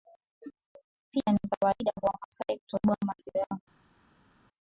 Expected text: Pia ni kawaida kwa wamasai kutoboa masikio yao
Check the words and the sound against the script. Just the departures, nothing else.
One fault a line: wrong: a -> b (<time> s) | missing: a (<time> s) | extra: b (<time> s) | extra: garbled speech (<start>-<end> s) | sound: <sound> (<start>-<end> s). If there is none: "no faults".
no faults